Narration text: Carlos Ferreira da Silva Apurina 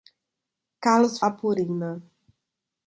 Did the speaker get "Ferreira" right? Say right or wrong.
wrong